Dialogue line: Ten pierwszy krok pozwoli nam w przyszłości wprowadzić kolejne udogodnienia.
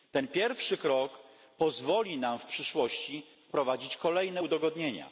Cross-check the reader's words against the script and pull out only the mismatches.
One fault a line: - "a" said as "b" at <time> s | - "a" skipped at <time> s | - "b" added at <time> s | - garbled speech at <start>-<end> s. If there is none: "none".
none